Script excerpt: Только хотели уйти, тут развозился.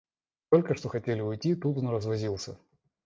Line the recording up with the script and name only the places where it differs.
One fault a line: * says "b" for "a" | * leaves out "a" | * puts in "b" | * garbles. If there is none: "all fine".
* puts in "что"
* puts in "он"